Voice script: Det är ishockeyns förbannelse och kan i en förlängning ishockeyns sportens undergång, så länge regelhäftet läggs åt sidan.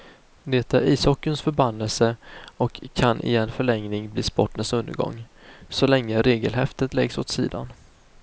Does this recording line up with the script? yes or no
no